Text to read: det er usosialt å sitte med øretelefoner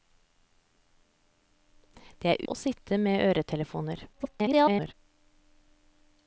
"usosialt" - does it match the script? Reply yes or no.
no